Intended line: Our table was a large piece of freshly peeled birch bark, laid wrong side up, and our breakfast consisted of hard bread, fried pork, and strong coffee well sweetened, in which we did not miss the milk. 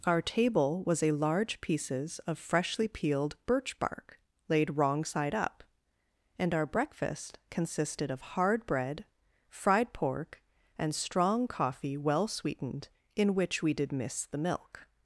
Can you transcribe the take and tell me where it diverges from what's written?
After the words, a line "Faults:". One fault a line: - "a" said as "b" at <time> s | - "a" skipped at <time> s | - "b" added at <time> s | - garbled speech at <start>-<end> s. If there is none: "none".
Our table was a large pieces of freshly peeled birch bark, laid wrong side up, and our breakfast consisted of hard bread, fried pork, and strong coffee well sweetened, in which we did miss the milk.
Faults:
- "piece" said as "pieces" at 1.6 s
- "not" skipped at 13.9 s